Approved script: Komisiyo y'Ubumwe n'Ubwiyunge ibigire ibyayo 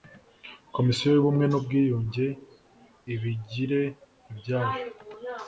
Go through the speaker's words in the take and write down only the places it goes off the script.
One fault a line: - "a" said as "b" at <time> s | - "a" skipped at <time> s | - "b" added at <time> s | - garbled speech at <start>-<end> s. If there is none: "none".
none